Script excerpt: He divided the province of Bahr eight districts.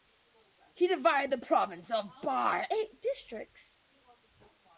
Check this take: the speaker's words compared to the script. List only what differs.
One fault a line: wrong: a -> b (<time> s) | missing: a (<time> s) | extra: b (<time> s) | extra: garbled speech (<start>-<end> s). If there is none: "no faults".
no faults